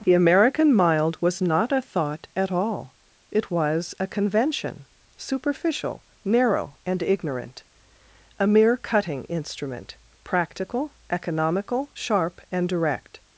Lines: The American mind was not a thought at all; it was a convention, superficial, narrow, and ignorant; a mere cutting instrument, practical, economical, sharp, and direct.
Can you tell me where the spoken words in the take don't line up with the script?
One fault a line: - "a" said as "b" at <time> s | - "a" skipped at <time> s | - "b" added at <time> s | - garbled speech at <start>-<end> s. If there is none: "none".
- "mind" said as "mild" at 0.7 s